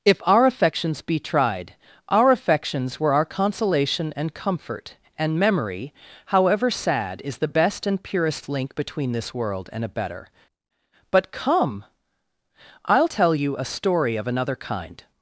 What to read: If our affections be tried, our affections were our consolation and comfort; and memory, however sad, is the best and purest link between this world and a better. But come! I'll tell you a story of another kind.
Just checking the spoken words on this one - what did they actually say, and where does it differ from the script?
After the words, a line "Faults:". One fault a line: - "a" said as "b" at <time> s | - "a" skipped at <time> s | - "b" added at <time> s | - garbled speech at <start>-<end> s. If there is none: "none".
If our affections be tried, our affections were our consolation and comfort; and memory, however sad, is the best and purest link between this world and a better. But come! I'll tell you a story of another kind.
Faults:
none